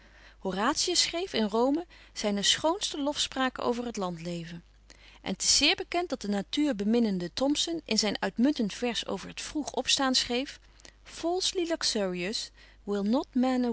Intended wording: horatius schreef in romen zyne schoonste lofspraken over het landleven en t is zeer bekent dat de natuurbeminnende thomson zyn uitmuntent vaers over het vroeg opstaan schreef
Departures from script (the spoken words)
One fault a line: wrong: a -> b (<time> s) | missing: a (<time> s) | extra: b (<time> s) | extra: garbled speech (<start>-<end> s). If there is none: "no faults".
extra: in (7.8 s)